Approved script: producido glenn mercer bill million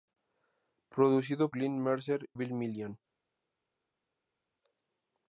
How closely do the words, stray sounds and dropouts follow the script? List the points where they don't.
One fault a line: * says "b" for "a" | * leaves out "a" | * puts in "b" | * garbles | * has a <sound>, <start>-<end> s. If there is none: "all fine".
all fine